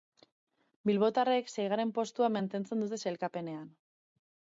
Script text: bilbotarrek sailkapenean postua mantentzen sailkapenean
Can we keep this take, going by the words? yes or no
no